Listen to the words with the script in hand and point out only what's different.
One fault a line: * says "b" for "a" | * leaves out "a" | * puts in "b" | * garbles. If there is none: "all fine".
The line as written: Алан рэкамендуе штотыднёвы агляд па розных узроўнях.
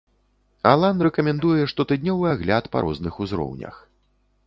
all fine